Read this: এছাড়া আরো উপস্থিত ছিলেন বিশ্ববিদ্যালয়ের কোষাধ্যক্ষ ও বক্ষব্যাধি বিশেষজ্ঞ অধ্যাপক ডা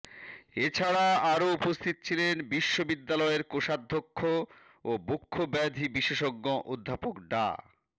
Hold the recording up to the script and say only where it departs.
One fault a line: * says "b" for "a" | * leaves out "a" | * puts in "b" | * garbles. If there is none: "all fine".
all fine